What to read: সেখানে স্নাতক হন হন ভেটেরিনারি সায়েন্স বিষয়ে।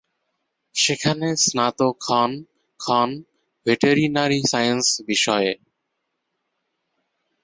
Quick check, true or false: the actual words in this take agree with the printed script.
true